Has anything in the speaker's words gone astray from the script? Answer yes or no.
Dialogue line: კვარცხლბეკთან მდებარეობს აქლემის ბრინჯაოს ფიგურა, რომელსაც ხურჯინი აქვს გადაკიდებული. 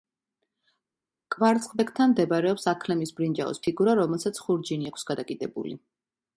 no